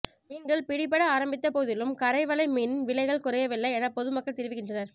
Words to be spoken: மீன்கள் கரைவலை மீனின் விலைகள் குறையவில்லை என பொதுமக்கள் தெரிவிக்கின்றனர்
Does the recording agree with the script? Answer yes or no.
no